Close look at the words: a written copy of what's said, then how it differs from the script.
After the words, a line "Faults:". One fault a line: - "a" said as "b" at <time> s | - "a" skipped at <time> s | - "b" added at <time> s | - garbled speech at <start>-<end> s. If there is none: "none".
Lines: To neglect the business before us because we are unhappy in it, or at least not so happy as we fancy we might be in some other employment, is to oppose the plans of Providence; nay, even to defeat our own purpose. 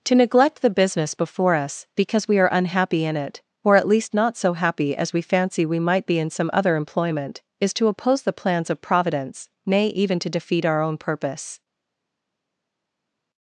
To neglect the business before us because we are unhappy in it, or at least not so happy as we fancy we might be in some other employment, is to oppose the plans of Providence; nay, even to defeat our own purpose.
Faults:
none